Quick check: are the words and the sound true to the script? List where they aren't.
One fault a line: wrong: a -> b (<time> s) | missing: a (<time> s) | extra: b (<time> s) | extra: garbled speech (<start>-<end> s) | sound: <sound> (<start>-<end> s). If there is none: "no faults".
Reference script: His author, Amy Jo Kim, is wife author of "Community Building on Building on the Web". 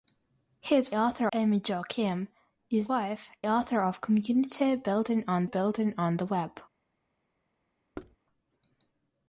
sound: thud (7.9-8.2 s)